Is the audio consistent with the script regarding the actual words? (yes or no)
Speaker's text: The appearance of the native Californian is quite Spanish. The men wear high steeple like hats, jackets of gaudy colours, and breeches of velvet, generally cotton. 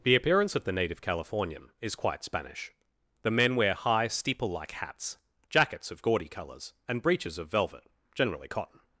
yes